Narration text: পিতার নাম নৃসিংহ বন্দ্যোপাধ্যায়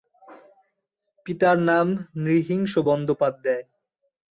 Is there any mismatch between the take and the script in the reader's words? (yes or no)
no